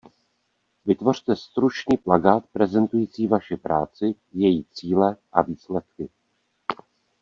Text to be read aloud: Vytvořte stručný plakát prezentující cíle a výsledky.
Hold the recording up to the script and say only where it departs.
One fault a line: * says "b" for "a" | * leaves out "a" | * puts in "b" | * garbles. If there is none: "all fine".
* puts in "vaši práci její"